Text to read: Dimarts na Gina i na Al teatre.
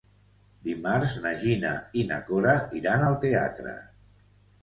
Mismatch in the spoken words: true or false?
true